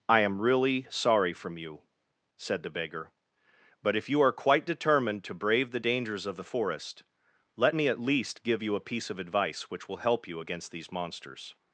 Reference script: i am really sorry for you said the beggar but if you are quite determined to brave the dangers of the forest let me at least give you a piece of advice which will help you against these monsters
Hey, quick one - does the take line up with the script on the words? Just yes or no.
no